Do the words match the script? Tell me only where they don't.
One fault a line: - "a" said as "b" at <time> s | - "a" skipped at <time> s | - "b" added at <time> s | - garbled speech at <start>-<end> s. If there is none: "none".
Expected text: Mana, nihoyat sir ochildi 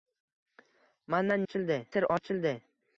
- "nihoyat" said as "ochildi" at 1.4 s